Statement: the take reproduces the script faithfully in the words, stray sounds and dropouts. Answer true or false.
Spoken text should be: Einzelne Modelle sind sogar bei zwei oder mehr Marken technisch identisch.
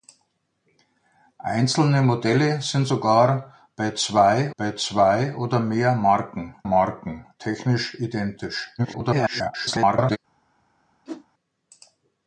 false